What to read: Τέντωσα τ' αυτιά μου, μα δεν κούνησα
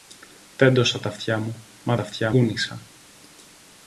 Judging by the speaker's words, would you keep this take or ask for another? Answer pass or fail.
fail